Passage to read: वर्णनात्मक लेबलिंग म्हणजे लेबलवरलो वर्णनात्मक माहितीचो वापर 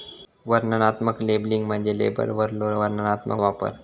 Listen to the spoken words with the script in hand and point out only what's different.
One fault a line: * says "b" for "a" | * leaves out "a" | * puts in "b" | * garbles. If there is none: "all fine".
* leaves out "माहितीचो"